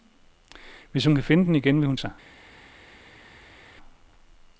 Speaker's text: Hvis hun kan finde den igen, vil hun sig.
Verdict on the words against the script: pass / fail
pass